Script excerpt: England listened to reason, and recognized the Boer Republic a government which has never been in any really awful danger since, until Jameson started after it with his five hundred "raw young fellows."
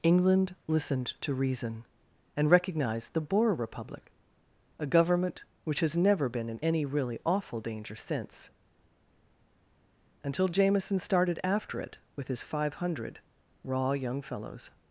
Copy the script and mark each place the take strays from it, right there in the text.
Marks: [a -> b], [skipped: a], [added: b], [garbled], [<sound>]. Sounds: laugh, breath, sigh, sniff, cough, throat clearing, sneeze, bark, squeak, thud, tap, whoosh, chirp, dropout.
England listened to reason, and recognized the Boer Republic a government which has never been in any really awful danger since, until Jameson started after it with his five hundred "raw young fellows."